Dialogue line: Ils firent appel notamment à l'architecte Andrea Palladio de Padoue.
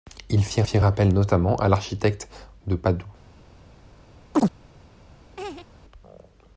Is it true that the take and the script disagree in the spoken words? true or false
true